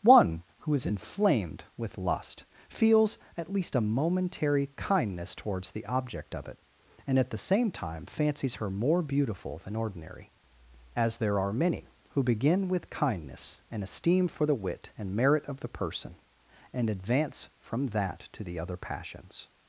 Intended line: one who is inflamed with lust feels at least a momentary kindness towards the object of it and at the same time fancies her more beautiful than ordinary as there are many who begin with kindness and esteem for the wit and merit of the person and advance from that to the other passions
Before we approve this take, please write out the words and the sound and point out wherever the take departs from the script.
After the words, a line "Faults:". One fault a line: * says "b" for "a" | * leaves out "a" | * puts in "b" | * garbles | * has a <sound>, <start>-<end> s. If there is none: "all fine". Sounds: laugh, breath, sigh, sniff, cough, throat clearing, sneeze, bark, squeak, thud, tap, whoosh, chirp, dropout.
one who is inflamed with lust feels at least a momentary kindness towards the object of it and at the same time fancies her more beautiful than ordinary as there are many who begin with kindness and esteem for the wit and merit of the person and advance from that to the other passions
Faults:
all fine